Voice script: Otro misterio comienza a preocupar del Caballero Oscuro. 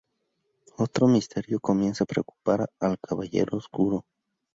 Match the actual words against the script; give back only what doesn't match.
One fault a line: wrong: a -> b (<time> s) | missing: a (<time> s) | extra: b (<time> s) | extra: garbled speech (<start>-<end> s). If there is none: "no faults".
wrong: del -> al (2.8 s)